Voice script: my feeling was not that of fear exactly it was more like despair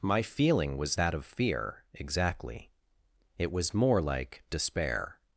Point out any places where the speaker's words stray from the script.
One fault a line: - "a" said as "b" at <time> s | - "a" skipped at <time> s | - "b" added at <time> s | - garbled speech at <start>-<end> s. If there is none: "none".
- "not" skipped at 1.0 s